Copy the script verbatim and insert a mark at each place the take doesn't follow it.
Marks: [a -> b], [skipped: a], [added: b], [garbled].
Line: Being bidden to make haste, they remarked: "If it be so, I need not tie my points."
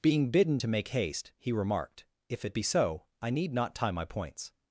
Being bidden to make haste, [they -> he] remarked: "If it be so, I need not tie my points."